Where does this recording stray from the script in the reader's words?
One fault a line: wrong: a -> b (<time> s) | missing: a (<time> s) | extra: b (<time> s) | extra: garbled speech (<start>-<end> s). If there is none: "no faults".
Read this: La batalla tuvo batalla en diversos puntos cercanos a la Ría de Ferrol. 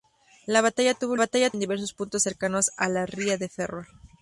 no faults